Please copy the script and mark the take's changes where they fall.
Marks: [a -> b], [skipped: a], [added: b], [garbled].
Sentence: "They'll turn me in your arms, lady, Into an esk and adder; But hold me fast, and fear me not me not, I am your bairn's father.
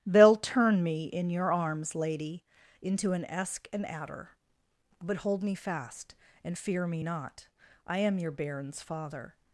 "They'll turn me in your arms, lady, Into an esk and adder; But hold me fast, and fear me not [skipped: me not,] I am your bairn's father.